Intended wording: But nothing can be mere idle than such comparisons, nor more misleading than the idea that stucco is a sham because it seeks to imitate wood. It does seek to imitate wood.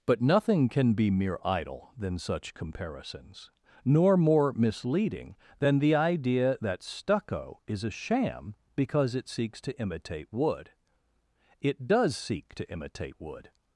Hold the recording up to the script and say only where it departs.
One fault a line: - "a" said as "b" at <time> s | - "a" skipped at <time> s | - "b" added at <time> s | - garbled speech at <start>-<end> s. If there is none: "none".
none